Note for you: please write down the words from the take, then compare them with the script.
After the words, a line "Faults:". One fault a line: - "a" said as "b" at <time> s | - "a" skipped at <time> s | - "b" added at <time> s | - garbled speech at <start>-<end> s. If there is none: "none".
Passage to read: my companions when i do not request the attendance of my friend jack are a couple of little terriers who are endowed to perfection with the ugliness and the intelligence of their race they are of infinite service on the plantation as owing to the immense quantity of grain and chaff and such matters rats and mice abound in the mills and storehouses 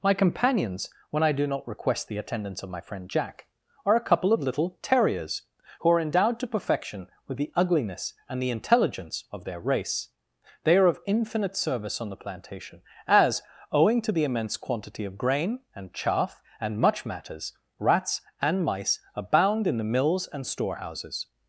my companions when i do not request the attendance of my friend jack are a couple of little terriers who are endowed to perfection with the ugliness and the intelligence of their race they are of infinite service on the plantation as owing to the immense quantity of grain and chaff and much matters rats and mice abound in the mills and storehouses
Faults:
- "such" said as "much" at 16.8 s